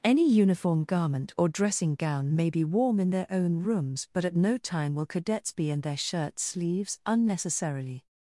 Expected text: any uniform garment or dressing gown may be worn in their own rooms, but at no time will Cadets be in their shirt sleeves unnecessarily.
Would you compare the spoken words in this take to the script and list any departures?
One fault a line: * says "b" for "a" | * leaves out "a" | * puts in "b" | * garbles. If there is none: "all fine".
* says "warm" for "worn"